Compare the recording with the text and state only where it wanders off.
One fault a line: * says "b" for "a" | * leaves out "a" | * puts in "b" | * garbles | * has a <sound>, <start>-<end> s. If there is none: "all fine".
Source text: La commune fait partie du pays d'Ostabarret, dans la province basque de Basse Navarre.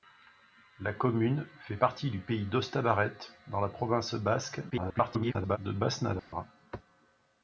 * garbles
* has a dropout, 6.2-6.3 s